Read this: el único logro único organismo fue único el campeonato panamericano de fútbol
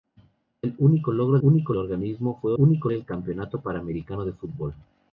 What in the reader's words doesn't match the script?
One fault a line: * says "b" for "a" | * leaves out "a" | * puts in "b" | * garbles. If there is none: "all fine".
all fine